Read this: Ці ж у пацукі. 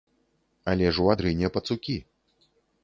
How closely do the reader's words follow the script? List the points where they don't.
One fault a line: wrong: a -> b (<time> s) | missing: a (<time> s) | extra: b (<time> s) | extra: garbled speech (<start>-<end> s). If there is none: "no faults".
wrong: Ці -> Але (0.7 s)
extra: адрыне (1.1 s)